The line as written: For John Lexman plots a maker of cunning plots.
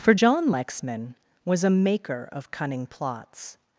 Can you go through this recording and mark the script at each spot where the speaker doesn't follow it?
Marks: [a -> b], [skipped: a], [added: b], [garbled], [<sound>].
For John Lexman [plots -> was] a maker of cunning plots.